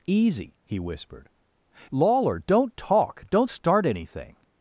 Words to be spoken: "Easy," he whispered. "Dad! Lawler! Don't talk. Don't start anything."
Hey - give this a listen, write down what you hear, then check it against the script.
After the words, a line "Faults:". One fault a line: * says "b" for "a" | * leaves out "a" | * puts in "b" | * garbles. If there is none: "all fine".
"Easy," he whispered! "Lawler! Don't talk. Don't start anything."
Faults:
* leaves out "Dad"